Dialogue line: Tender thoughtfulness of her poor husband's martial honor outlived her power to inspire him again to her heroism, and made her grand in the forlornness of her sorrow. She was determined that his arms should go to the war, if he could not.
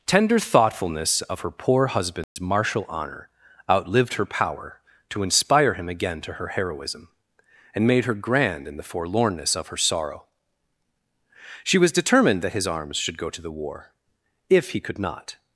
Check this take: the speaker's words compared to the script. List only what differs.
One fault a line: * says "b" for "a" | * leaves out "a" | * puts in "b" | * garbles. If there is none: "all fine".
all fine